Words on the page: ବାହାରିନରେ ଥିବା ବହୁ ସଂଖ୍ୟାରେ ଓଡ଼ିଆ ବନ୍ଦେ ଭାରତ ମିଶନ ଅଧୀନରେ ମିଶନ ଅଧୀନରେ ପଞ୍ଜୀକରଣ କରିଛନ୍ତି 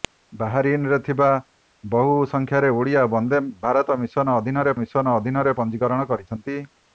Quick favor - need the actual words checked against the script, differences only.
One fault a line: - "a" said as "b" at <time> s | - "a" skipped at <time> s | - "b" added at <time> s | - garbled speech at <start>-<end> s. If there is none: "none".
none